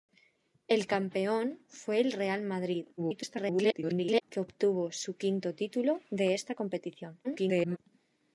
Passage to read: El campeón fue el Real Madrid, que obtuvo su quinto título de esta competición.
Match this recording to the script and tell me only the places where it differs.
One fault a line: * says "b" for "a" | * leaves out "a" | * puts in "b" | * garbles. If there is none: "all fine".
* garbles
* garbles